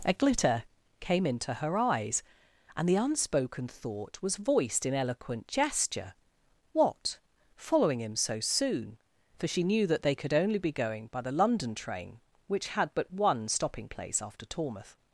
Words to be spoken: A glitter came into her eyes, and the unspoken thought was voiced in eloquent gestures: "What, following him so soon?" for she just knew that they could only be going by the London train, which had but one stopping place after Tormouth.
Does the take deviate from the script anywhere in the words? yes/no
yes